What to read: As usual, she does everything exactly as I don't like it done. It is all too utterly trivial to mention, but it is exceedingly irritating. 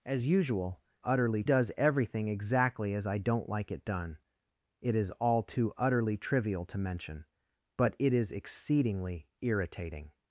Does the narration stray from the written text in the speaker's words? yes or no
yes